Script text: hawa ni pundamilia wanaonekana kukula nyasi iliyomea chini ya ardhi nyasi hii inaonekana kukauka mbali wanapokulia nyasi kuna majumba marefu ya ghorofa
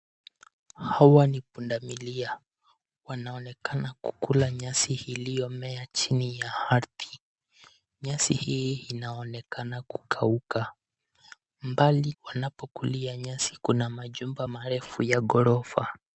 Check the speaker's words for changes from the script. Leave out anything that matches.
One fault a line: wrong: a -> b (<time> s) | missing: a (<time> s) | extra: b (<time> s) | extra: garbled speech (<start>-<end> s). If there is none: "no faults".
no faults